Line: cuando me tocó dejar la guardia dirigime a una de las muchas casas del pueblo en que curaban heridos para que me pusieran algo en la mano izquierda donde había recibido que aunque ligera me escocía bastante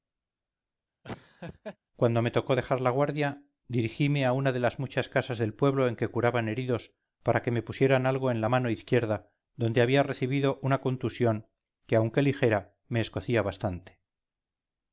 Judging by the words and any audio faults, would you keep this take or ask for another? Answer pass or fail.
fail